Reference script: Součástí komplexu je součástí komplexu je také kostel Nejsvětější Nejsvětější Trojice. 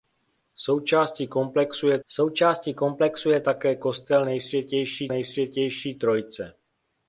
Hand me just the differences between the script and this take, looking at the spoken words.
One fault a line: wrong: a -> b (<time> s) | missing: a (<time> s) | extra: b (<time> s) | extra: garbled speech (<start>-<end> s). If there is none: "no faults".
no faults